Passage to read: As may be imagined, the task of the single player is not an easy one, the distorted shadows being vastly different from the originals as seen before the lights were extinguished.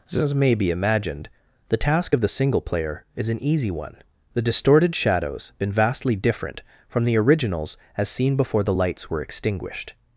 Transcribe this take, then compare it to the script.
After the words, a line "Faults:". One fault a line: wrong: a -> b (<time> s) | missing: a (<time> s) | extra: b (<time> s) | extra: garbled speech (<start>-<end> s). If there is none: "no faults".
As may be imagined, the task of the single player is an easy one, the distorted shadows been vastly different from the originals as seen before the lights were extinguished.
Faults:
missing: not (3.3 s)
wrong: being -> been (5.6 s)